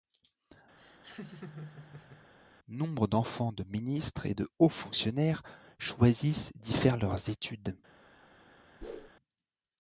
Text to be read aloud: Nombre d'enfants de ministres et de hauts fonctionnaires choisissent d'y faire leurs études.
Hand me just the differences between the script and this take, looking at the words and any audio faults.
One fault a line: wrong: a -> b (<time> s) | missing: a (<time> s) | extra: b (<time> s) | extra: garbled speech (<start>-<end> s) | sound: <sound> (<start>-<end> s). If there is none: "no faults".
sound: laugh (0.8-2.3 s)
sound: whoosh (8.8-9.1 s)